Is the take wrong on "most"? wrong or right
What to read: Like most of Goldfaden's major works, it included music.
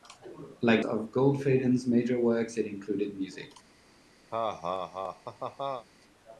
wrong